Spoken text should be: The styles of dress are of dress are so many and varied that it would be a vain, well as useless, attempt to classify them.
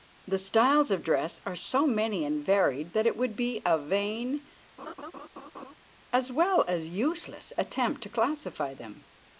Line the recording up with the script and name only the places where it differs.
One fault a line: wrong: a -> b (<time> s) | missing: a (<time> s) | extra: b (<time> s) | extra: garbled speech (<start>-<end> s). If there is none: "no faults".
missing: of dress are (1.6 s)
extra: as (6.1 s)